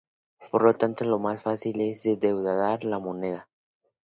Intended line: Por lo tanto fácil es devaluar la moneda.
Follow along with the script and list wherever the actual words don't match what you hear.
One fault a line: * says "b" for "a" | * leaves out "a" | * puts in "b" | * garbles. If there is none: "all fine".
* puts in "lo más"